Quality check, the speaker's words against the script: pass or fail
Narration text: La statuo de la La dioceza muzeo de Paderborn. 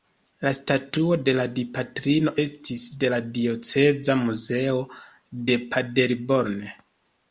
fail